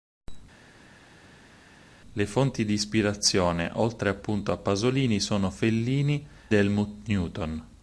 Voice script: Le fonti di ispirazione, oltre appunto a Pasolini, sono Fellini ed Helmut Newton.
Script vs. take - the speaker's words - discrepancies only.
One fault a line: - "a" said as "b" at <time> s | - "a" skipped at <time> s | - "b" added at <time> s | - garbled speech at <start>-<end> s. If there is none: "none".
- "ed" skipped at 6.3 s